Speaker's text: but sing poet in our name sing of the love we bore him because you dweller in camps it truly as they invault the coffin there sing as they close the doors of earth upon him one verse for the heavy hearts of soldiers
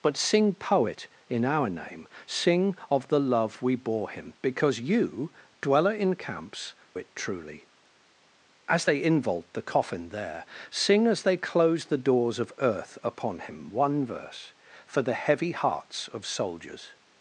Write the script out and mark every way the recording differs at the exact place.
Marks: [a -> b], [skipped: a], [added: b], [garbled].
but sing poet in our name sing of the love we bore him because you dweller in camps it truly as they invault the coffin there sing as they close the doors of earth upon him one verse for the heavy hearts of soldiers